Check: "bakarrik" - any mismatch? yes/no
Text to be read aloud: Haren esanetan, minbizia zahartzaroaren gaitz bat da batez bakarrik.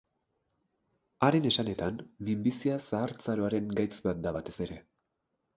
yes